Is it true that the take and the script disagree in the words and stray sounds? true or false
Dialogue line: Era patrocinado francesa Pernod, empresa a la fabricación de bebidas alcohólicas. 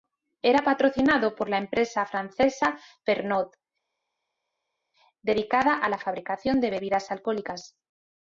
true